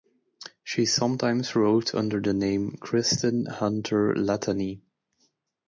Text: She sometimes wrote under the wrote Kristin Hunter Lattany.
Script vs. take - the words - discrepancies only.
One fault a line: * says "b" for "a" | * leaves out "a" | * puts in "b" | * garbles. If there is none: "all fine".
* says "name" for "wrote"